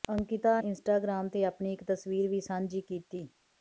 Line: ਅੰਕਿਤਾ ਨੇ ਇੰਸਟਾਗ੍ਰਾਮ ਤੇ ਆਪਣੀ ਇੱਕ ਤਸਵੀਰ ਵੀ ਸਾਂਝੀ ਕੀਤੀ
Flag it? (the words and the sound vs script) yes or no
yes